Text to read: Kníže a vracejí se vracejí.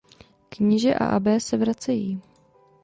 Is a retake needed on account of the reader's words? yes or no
yes